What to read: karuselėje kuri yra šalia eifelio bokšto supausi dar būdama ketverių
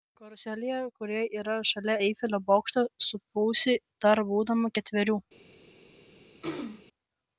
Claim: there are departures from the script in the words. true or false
false